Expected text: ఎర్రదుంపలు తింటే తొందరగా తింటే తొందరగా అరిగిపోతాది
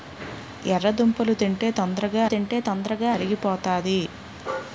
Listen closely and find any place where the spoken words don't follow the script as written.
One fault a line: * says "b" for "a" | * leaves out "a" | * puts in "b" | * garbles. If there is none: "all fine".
all fine